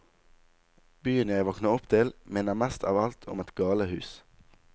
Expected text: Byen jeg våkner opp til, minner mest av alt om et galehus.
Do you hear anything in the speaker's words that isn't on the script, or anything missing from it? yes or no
no